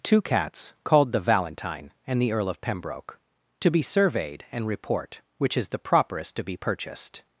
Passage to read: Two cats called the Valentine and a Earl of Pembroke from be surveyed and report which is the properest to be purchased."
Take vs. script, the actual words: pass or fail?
fail